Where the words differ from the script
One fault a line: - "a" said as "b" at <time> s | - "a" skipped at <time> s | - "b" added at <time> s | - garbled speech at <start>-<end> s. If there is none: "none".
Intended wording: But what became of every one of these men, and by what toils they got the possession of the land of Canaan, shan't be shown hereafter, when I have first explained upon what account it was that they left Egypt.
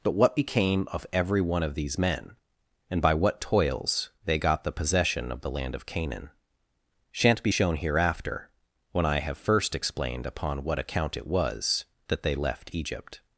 none